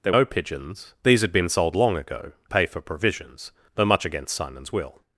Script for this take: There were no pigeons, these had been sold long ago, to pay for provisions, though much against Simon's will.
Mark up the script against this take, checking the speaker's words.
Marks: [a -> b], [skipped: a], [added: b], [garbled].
There [skipped: were] no pigeons, these had been sold long ago, [skipped: to] pay for provisions, though much against Simon's will.